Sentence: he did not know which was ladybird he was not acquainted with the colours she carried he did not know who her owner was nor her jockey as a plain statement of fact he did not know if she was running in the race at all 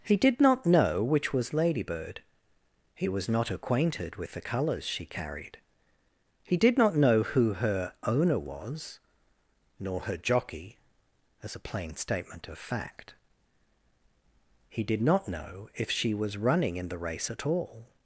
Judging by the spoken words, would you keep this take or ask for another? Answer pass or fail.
pass